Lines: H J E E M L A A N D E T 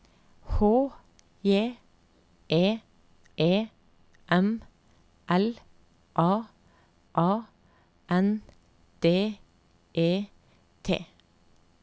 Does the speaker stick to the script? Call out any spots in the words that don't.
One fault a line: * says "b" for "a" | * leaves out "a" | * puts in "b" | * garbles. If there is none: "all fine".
all fine